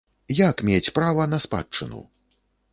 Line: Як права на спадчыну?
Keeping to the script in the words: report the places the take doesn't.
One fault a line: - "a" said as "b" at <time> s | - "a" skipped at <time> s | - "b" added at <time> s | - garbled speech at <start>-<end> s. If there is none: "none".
- "мець" added at 0.7 s